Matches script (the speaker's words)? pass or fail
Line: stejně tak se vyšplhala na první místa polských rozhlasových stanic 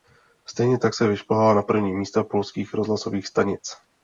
pass